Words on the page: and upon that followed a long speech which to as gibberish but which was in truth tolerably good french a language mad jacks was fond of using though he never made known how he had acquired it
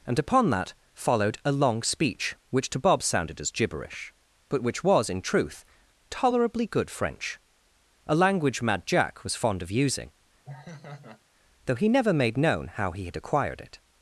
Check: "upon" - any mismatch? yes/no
no